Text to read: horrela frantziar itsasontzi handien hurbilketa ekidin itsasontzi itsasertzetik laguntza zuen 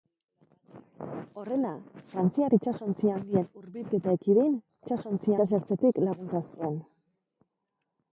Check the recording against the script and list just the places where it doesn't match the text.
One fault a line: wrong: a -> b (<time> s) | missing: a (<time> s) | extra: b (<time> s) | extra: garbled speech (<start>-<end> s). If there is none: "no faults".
no faults